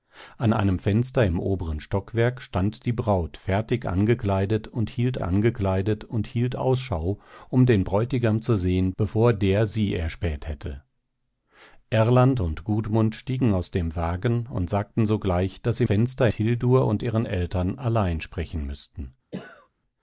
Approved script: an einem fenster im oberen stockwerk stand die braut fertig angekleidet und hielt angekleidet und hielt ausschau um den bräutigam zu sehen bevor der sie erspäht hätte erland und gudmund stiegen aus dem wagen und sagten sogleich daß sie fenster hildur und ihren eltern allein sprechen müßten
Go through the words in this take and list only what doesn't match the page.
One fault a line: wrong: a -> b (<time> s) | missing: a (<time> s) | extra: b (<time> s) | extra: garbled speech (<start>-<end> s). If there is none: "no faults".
no faults